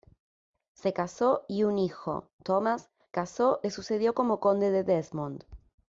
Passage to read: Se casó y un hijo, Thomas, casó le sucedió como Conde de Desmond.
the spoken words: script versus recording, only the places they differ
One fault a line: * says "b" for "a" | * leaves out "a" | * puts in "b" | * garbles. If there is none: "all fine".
all fine